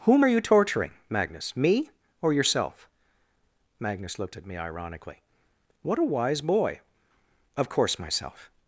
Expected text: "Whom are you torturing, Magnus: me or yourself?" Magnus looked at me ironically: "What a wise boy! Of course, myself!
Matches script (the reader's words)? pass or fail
pass